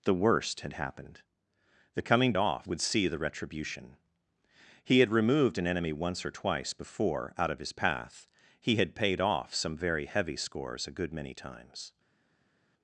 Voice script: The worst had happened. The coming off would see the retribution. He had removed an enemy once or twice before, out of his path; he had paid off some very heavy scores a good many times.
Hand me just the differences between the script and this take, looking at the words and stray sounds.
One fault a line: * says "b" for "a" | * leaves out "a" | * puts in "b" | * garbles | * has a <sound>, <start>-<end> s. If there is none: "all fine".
all fine